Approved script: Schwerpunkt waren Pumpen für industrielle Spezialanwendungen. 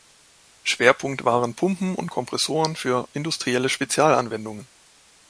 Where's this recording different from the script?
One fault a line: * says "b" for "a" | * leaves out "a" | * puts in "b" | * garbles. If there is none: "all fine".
* puts in "und Kompressoren"